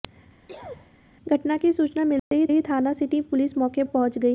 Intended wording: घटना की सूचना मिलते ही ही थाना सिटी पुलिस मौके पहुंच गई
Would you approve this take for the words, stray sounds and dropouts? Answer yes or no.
no